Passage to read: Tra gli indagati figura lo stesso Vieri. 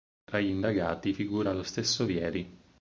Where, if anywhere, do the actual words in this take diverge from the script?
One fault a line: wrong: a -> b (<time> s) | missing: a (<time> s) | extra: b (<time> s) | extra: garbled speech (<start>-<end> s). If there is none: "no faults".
no faults